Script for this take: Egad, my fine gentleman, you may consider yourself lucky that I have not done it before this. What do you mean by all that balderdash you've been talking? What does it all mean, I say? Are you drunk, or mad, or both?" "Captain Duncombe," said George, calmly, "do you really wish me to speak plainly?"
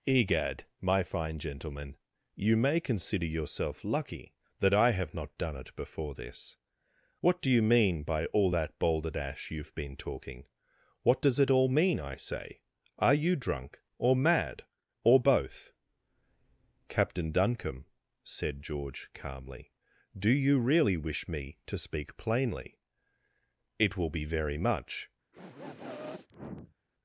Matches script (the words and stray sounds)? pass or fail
fail